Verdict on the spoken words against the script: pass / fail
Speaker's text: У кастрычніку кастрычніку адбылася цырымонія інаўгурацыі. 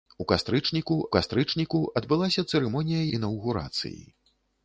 pass